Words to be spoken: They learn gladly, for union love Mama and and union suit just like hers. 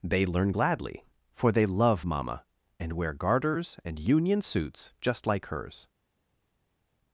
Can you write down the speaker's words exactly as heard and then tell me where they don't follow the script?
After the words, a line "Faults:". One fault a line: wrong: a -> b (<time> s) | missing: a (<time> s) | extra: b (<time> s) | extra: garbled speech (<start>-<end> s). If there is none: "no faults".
They learn gladly, for they love Mama and wear garters and union suits just like hers.
Faults:
wrong: union -> they (1.5 s)
extra: wear garters (2.9 s)
wrong: suit -> suits (4.4 s)